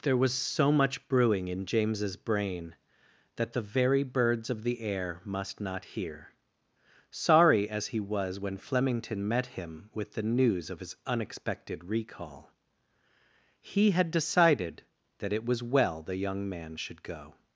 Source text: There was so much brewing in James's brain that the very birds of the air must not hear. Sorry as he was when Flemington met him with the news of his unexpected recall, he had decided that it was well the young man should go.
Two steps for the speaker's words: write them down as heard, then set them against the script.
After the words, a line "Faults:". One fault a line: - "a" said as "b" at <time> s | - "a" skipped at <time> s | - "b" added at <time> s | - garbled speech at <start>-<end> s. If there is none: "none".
There was so much brewing in James's brain that the very birds of the air must not hear. Sorry as he was when Flemington met him with the news of his unexpected recall, he had decided that it was well the young man should go.
Faults:
none